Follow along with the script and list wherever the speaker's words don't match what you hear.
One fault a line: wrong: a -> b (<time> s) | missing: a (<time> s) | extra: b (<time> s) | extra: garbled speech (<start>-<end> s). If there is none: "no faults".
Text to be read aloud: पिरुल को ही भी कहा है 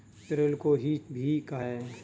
no faults